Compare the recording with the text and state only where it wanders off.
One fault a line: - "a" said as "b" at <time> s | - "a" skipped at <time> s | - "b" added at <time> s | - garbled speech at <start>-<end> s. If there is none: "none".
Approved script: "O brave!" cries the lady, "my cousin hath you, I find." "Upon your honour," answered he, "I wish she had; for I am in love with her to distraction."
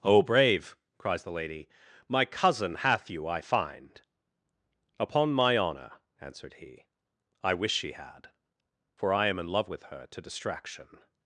- "your" said as "my" at 5.3 s